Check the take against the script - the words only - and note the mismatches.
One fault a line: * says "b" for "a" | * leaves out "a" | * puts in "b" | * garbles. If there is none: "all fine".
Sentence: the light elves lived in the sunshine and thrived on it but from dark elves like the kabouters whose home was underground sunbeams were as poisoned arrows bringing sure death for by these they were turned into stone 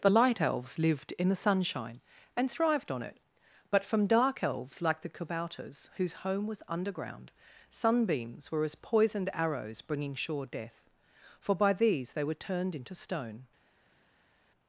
all fine